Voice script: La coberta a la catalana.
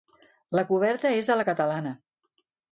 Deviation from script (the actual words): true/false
true